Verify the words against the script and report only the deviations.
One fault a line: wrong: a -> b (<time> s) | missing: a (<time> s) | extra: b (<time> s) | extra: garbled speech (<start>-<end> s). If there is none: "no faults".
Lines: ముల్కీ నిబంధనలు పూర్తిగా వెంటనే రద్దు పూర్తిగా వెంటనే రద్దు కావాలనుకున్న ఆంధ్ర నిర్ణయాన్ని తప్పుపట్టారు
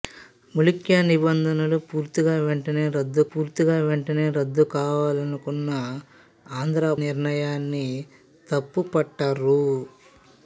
no faults